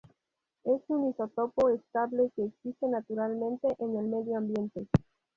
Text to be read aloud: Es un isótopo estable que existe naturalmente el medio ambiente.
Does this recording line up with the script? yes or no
no